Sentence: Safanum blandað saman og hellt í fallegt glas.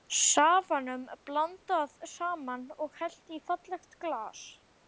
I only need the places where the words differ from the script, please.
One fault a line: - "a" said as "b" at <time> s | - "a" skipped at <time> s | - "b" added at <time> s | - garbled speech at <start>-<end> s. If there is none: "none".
none